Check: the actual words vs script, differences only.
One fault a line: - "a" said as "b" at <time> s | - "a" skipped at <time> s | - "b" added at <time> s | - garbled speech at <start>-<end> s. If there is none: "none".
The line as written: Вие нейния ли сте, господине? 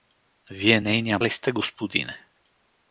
none